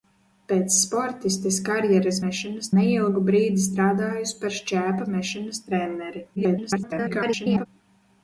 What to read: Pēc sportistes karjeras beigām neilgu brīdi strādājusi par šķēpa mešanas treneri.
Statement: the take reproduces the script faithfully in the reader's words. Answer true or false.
false